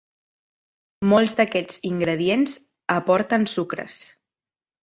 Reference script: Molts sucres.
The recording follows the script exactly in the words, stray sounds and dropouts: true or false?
false